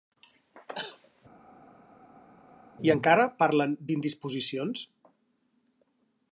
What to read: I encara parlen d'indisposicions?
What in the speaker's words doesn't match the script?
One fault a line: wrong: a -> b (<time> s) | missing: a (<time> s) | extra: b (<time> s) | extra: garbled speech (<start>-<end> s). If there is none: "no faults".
no faults